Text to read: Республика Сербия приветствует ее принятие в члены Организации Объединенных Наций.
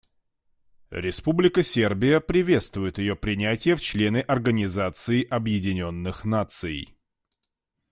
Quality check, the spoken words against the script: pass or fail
pass